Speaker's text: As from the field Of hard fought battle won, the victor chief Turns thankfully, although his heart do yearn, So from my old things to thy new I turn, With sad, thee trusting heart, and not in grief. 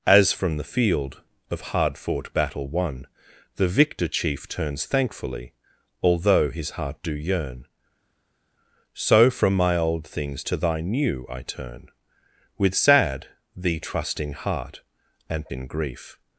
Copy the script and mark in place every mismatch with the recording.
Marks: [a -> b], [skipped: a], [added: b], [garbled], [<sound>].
As from the field Of hard fought battle won, the victor chief Turns thankfully, although his heart do yearn, So from my old things to thy new I turn, With sad, thee trusting heart, and [skipped: not] in grief.